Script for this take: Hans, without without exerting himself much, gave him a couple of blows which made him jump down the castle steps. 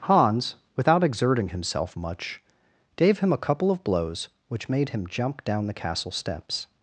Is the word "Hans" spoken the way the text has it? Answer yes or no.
yes